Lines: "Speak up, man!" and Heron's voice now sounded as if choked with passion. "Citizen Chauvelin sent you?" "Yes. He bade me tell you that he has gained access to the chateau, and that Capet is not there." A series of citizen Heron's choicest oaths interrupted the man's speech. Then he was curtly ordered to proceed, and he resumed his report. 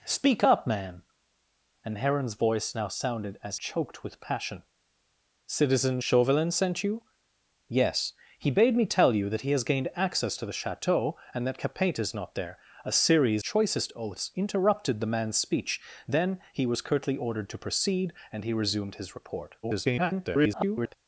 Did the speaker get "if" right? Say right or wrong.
wrong